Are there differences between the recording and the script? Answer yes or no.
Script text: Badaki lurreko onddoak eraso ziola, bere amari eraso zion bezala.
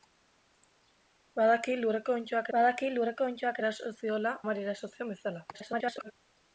yes